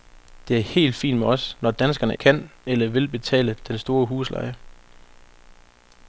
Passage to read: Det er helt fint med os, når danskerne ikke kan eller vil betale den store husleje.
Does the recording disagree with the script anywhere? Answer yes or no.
yes